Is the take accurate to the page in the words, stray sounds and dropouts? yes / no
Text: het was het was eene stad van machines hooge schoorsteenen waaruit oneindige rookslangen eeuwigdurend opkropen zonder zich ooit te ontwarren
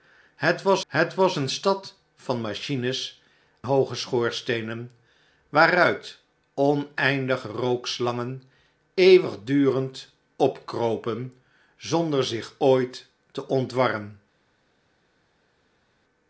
yes